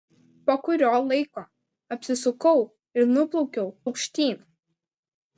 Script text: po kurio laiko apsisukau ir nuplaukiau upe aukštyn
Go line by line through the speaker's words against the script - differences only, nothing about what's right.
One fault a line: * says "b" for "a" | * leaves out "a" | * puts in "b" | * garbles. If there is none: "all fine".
* leaves out "upe"